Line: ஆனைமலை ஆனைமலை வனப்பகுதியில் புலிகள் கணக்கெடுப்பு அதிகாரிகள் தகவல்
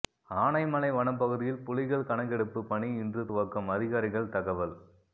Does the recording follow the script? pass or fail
fail